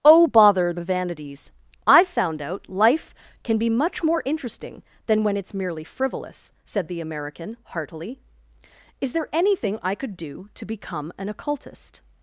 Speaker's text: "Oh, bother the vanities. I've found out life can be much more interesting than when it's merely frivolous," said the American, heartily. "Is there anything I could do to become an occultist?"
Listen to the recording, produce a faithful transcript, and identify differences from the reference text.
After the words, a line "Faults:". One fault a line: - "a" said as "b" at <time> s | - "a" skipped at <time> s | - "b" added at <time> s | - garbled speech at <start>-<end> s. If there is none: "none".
"Oh, bother the vanities. I've found out life can be much more interesting than when it's merely frivolous," said the American, heartily. "Is there anything I could do to become an occultist?"
Faults:
none